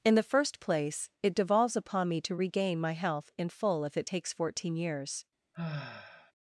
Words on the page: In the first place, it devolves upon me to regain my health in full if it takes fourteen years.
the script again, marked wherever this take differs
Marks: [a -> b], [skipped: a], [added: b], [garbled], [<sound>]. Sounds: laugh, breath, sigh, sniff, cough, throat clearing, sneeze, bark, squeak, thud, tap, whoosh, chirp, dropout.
In the first place, it devolves upon me to regain my health in full if it takes fourteen years. [sigh]